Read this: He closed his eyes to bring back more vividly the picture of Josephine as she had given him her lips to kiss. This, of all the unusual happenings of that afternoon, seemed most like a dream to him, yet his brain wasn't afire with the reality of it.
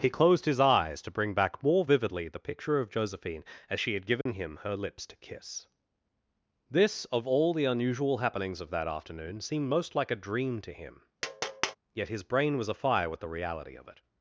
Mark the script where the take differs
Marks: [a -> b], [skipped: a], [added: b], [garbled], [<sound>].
He closed his eyes to bring back more vividly the picture of Josephine as she had given [dropout] him her lips to kiss. This, of all the unusual happenings of that afternoon, seemed most like a dream to him, [tap] yet his brain [wasn't -> was] afire with the reality of it.